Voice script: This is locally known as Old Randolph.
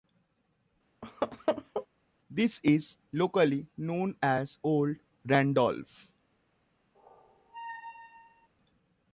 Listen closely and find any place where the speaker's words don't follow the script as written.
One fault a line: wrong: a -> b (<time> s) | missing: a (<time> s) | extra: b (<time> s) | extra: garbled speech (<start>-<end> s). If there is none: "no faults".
no faults